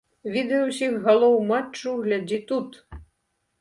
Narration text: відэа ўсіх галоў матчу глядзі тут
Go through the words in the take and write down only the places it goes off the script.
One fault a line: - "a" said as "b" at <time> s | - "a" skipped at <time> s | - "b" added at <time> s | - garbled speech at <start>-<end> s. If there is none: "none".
none